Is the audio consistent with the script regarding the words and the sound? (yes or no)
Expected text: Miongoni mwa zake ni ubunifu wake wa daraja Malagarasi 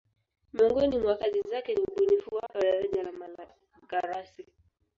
no